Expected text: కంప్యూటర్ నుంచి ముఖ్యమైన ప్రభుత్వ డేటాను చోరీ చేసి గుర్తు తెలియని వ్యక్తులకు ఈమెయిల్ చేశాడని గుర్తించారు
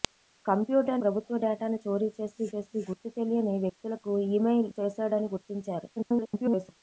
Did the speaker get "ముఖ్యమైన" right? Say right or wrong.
wrong